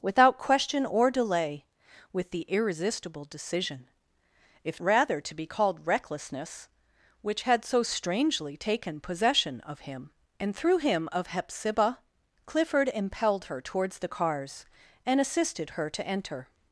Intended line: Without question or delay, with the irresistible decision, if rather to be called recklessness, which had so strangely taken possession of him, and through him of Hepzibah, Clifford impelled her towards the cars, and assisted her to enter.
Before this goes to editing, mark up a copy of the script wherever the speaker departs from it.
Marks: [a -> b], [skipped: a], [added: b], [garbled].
Without question or delay, with the irresistible decision, if rather to be called recklessness, which had so strangely taken possession of him, and through him of Hepzibah, Clifford impelled her towards the cars, and assisted her to enter.